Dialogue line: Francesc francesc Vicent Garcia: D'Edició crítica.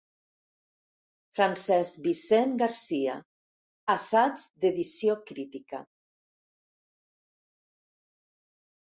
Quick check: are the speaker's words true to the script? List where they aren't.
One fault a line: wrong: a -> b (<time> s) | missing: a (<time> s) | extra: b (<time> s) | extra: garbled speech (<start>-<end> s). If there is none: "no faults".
missing: francesc (2.0 s)
extra: Assaig (4.0 s)